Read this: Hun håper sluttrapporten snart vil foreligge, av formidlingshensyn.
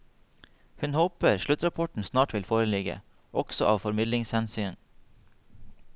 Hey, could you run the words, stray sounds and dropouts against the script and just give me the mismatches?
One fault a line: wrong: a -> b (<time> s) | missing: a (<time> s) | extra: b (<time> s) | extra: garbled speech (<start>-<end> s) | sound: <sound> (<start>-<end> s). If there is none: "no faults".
extra: også (3.3 s)